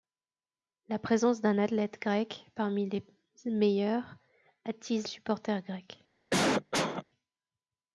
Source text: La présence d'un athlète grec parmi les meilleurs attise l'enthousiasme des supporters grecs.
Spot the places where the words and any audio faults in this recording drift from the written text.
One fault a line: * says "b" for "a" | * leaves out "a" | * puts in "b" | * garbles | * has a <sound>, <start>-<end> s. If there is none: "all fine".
* leaves out "l'enthousiasme des"
* has a cough, 6.3-7.0 s